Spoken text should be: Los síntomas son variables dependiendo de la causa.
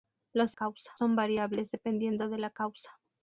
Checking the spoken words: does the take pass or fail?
fail